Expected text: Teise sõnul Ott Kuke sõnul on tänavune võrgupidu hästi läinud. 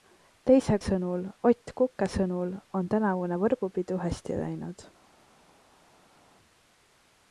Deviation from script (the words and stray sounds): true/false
false